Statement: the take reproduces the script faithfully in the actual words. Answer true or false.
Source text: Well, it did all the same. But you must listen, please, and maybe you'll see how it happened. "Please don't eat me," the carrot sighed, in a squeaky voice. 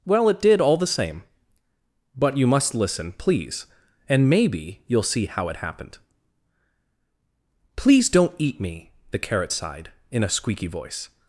true